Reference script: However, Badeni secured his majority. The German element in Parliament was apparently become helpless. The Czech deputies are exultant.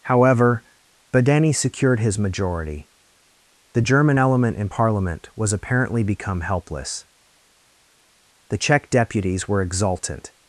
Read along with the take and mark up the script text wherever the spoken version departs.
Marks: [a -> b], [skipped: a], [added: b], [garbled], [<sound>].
However, Badeni secured his majority. The German element in Parliament was apparently become helpless. The Czech deputies [are -> were] exultant.